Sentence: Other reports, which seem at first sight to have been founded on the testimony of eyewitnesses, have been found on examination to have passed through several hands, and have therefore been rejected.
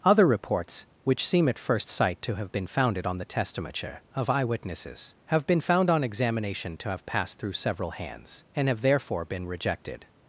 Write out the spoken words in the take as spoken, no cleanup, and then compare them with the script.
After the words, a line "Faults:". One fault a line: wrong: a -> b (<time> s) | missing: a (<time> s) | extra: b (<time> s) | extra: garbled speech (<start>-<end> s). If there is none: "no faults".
Other reports, which seem at first sight to have been founded on the testimony of eyewitnesses, have been found on examination to have passed through several hands, and have therefore been rejected.
Faults:
no faults